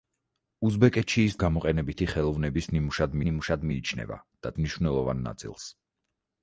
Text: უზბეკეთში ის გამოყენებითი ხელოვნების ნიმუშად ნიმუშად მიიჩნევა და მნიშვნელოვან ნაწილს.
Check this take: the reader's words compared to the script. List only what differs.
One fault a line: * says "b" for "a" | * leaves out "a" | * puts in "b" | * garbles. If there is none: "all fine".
all fine